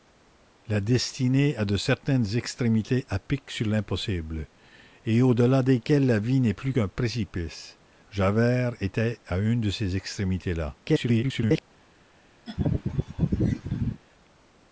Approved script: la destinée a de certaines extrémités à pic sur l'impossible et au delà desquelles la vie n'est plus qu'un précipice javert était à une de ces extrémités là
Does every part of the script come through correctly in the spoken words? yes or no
no